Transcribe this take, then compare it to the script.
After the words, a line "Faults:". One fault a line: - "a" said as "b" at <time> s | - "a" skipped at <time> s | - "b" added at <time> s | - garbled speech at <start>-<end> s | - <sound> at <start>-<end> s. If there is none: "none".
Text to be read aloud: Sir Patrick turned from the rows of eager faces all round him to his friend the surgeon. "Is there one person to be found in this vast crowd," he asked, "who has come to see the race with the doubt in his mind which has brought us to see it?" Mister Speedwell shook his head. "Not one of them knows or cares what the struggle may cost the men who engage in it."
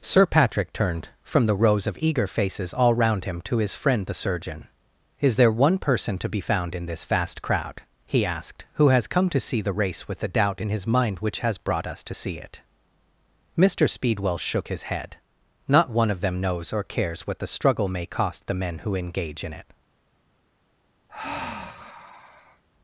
Sir Patrick turned from the rows of eager faces all round him to his friend the surgeon. "Is there one person to be found in this vast crowd," he asked, "who has come to see the race with the doubt in his mind which has brought us to see it?" Mister Speedwell shook his head. "Not one of them knows or cares what the struggle may cost the men who engage in it."
Faults:
- sigh at 21.1-22.6 s